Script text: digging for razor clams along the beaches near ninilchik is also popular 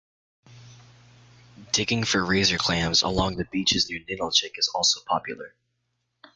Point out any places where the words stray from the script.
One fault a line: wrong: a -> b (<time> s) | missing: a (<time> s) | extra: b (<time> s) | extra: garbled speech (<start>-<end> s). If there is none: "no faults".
no faults